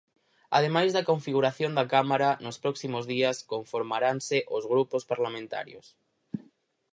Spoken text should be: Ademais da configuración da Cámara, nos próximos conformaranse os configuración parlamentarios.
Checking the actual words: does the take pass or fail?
fail